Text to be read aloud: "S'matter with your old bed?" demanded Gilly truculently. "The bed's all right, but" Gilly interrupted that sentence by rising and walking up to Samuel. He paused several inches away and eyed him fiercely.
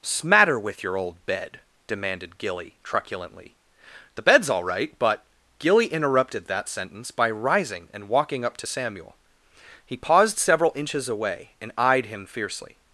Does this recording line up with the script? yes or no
yes